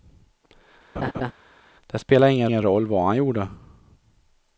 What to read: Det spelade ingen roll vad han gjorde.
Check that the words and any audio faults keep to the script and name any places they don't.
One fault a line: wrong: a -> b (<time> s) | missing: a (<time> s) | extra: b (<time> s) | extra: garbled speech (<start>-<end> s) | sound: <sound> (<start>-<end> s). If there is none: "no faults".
sound: laugh (1.0-1.3 s)
extra: ingen (2.4 s)